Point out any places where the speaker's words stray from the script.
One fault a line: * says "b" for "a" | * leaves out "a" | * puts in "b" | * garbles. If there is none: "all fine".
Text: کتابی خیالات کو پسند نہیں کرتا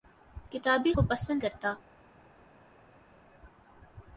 * leaves out "خیالات"
* leaves out "نہیں"